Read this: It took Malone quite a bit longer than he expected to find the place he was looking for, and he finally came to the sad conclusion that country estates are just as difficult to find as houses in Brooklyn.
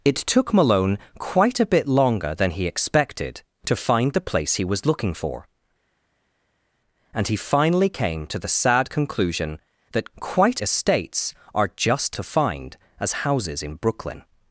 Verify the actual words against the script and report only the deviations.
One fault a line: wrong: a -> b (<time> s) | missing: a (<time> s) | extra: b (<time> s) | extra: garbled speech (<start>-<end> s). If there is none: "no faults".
wrong: country -> quite (10.2 s)
missing: as difficult (12.2 s)